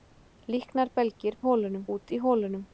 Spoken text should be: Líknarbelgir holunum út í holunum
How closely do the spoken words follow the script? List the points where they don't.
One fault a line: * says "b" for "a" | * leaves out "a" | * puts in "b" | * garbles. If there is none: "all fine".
all fine